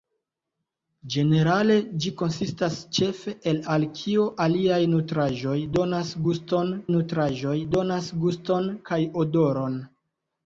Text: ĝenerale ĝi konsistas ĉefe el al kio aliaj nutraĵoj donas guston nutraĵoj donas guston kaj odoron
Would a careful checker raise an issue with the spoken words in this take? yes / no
no